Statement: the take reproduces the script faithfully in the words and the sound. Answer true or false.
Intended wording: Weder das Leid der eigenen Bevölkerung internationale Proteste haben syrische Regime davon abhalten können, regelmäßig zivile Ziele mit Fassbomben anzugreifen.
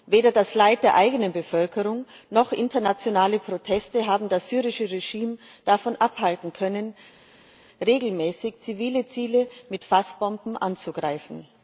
false